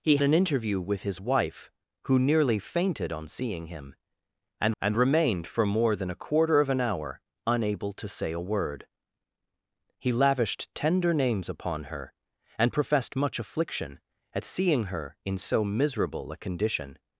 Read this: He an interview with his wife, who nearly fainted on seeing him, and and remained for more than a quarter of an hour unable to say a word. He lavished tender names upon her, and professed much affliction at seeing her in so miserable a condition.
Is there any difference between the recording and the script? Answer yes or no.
no